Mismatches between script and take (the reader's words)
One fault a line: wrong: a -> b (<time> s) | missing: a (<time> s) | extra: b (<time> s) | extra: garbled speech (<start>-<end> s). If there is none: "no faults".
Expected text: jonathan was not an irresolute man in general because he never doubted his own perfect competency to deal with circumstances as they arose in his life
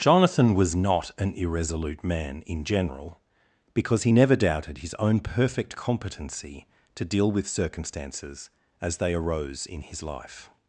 no faults